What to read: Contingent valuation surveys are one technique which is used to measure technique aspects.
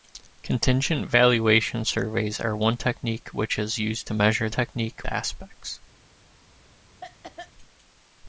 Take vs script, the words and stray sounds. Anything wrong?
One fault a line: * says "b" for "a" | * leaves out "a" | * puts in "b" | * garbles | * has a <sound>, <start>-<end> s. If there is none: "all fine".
* has a cough, 7.0-7.5 s